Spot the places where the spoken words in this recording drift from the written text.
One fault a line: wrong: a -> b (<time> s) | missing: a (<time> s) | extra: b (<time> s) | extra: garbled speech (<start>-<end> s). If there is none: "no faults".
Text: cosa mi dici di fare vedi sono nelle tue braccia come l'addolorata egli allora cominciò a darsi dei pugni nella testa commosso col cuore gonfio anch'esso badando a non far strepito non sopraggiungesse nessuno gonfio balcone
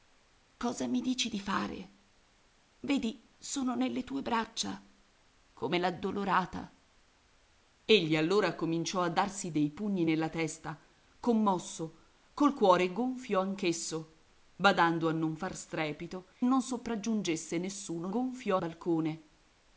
no faults